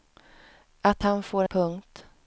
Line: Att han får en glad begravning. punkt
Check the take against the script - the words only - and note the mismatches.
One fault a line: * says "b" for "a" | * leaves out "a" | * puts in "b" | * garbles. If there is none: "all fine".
* leaves out "en glad begravning"